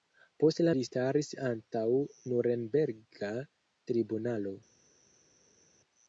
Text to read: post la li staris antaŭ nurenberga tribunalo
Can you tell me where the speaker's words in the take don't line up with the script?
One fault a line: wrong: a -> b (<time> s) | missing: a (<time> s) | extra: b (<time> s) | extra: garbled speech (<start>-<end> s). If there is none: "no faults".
no faults